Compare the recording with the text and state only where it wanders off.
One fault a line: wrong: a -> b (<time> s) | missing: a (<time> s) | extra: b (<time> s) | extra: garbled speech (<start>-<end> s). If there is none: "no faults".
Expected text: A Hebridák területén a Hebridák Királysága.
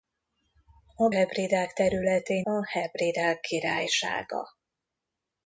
no faults